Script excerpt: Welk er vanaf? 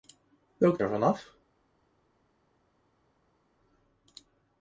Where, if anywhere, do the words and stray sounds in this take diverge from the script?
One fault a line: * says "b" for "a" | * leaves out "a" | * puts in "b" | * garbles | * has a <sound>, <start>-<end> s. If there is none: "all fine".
all fine